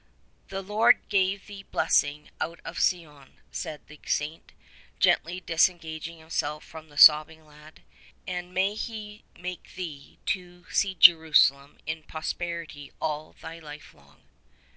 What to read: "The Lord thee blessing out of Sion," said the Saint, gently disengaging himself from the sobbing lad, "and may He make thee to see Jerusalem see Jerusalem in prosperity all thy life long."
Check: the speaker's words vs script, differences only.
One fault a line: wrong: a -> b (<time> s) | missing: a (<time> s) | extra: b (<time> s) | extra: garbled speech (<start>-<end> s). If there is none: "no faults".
extra: give (1.1 s)
missing: see Jerusalem (11.8 s)